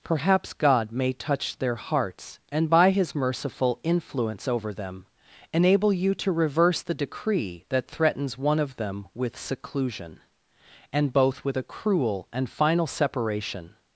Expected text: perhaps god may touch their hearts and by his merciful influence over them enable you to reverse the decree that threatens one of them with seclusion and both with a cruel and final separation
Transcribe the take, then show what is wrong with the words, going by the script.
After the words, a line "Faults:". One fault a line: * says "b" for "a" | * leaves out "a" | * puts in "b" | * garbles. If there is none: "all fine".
perhaps god may touch their hearts and by his merciful influence over them enable you to reverse the decree that threatens one of them with seclusion and both with a cruel and final separation
Faults:
all fine